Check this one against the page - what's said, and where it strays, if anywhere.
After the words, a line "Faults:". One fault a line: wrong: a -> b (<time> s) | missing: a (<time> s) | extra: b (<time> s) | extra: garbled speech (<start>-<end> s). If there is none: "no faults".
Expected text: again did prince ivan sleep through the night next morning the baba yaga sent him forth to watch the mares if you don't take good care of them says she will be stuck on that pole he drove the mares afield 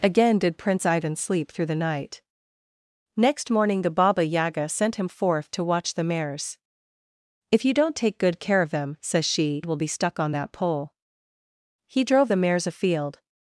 again did prince ivan sleep through the night next morning the baba yaga sent him forth to watch the mares if you don't take good care of them says she will be stuck on that pole he drove the mares afield
Faults:
no faults